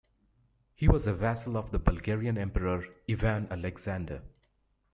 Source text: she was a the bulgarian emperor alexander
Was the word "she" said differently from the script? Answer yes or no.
yes